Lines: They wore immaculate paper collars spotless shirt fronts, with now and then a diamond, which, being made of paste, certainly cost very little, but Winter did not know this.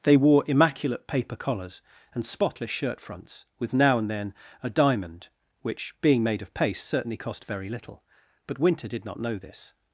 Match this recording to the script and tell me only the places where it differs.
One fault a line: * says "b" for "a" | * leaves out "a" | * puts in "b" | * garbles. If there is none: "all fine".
* puts in "and"